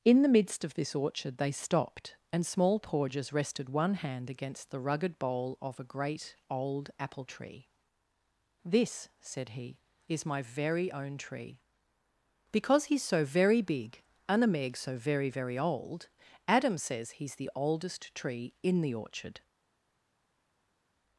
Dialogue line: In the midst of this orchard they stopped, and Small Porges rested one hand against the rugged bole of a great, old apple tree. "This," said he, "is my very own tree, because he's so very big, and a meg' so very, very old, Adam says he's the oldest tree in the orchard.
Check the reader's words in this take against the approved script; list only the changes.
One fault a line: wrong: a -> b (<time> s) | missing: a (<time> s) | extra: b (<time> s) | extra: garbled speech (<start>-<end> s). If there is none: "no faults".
no faults